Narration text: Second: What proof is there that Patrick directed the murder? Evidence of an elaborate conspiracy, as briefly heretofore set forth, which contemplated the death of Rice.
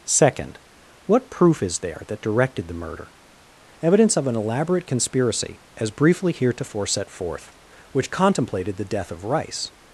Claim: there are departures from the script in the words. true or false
true